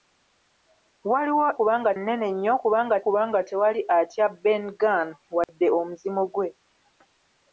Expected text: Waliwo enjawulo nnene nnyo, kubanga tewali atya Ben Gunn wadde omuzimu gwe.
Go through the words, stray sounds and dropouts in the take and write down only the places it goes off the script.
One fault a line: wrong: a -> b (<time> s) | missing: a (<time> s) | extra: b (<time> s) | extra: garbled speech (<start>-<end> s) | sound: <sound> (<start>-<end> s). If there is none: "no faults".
wrong: enjawulo -> kubanga (1.6 s)
extra: kubanga (3.0 s)
sound: dropout (5.4-5.5 s)